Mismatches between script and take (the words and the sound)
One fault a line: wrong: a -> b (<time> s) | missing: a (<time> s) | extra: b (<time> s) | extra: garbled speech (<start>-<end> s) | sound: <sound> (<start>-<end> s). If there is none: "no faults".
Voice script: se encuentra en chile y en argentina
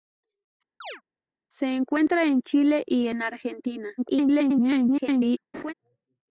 sound: chirp (0.8-1.0 s)
extra: garbled speech (4.0-5.4 s)
sound: laugh (5.5-5.7 s)